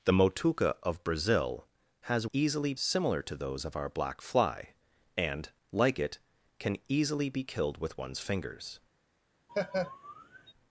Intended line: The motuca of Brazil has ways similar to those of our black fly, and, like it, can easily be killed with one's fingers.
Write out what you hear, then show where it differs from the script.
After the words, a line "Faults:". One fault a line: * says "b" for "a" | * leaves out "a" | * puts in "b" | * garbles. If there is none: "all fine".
The motuca of Brazil has easily similar to those of our black fly, and, like it, can easily be killed with one's fingers.
Faults:
* says "easily" for "ways"